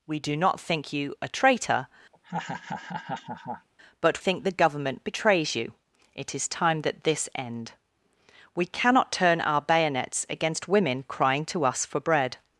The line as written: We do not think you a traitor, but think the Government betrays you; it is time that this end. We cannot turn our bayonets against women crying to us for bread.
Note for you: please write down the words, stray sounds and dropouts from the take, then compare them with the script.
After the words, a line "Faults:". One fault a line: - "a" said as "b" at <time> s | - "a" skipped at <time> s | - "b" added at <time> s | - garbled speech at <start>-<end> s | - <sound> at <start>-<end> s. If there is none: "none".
We do not think you a traitor, but think the Government betrays you; it is time that this end. We cannot turn our bayonets against women crying to us for bread.
Faults:
- laugh at 2.1-3.7 s